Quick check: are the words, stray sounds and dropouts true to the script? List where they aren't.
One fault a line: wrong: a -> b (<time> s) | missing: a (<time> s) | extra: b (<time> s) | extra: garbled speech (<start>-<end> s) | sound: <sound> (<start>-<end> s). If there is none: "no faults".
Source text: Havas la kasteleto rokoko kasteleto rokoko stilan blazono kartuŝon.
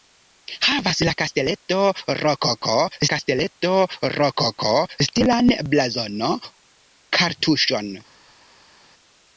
no faults